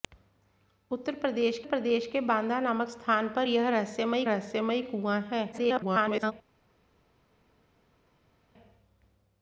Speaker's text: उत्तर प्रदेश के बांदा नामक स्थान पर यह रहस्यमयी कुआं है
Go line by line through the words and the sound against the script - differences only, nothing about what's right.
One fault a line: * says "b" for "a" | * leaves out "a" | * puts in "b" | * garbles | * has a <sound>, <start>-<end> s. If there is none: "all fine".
* puts in "प्रदेश"
* puts in "रहस्यमयी"
* garbles